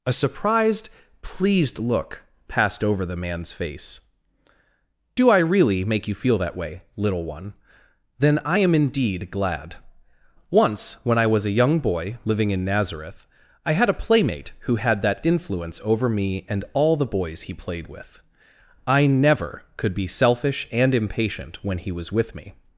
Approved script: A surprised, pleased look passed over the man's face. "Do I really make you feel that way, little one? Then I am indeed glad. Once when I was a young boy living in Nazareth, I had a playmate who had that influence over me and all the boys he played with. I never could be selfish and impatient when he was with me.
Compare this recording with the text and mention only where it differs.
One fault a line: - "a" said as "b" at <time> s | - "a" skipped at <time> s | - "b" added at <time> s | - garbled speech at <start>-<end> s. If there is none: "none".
none